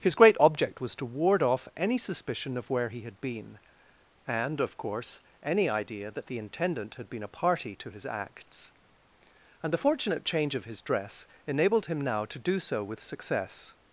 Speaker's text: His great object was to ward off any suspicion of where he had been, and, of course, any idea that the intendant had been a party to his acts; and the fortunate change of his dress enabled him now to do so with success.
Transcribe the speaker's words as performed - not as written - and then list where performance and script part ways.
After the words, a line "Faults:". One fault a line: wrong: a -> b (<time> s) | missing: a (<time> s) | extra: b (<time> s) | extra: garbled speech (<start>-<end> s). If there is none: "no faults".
His great object was to ward off any suspicion of where he had been, and, of course, any idea that the intendant had been a party to his acts; and the fortunate change of his dress enabled him now to do so with success.
Faults:
no faults